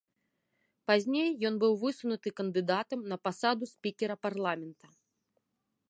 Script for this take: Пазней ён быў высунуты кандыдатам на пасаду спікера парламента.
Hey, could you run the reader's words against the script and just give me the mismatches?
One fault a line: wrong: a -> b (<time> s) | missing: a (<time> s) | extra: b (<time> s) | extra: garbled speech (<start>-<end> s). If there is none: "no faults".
no faults